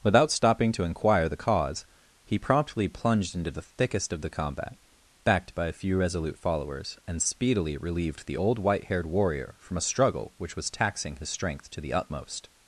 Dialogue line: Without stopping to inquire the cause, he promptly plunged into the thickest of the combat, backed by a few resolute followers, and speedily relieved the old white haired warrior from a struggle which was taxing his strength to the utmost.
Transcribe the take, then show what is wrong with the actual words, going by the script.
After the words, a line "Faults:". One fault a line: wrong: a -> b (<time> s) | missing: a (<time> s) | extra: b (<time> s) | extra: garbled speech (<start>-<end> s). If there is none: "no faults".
Without stopping to inquire the cause, he promptly plunged into the thickest of the combat, backed by a few resolute followers, and speedily relieved the old white haired warrior from a struggle which was taxing his strength to the utmost.
Faults:
no faults